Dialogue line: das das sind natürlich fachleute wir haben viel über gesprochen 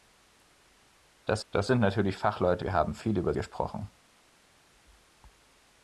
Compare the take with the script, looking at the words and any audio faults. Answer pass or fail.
pass